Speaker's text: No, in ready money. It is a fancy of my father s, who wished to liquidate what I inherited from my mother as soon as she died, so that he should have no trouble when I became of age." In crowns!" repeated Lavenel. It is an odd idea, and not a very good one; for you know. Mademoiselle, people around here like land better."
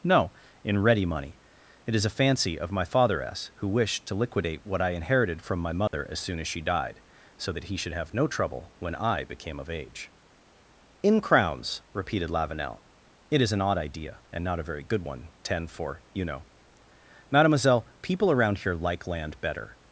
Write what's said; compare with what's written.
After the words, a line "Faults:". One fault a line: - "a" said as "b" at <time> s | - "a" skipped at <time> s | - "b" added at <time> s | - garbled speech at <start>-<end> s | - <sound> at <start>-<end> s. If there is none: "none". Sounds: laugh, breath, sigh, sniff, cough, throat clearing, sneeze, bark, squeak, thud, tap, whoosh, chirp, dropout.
No, in ready money. It is a fancy of my father s, who wished to liquidate what I inherited from my mother as soon as she died, so that he should have no trouble when I became of age." In crowns!" repeated Lavenel. It is an odd idea, and not a very good one; ten for you know. Mademoiselle, people around here like land better."
Faults:
- dropout at 5.9-5.9 s
- "ten" added at 15.4 s